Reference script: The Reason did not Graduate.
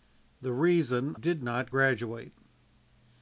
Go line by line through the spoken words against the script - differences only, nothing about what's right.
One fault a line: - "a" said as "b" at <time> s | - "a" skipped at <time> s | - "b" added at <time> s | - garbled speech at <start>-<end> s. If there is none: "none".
none